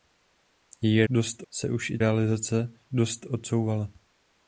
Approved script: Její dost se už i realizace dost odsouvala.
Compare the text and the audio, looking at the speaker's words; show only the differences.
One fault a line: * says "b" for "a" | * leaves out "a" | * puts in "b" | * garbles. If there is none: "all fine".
all fine